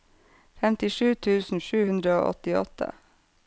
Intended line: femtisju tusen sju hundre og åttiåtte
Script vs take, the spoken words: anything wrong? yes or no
no